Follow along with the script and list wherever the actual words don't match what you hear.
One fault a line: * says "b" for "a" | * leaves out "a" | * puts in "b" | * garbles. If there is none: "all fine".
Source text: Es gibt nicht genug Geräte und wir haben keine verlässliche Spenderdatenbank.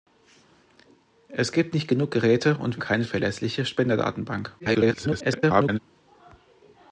* leaves out "wir haben"
* garbles